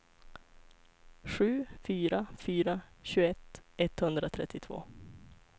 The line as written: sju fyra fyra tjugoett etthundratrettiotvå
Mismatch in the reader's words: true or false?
false